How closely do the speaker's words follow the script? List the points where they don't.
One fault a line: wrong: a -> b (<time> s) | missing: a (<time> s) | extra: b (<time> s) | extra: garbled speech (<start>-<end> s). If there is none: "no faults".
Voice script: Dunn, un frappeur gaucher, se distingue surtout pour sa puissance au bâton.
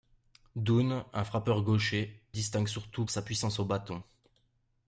missing: se (2.3 s)
missing: pour (3.0 s)